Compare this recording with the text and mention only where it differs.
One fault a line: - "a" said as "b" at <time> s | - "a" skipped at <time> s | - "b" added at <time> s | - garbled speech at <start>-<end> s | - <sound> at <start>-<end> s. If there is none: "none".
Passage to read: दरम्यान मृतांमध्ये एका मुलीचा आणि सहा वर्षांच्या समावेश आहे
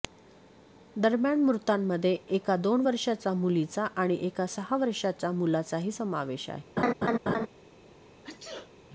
- "दोन वर्षांच्या" added at 2.6 s
- "एका" added at 4.2 s
- "मुलाचाही" added at 5.3 s
- laugh at 6.8-7.5 s
- sneeze at 8.2-8.7 s